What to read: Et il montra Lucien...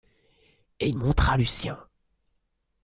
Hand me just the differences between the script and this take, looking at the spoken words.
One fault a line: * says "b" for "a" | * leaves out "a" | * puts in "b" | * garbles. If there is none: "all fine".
all fine